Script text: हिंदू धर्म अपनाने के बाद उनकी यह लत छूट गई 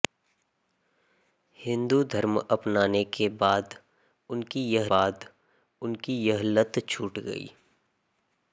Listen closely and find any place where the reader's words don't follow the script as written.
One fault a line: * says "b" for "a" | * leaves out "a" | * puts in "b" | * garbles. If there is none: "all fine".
* puts in "बाद उनकी यह"